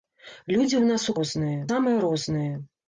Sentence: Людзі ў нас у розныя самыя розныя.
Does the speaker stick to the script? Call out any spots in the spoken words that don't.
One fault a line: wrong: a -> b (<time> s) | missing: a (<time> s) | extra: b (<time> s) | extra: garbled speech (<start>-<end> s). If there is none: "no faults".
no faults